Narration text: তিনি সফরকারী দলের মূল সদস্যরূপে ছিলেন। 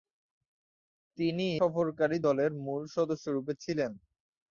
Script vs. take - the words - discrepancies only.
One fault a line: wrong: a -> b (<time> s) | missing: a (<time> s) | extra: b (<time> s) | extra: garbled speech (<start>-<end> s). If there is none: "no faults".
no faults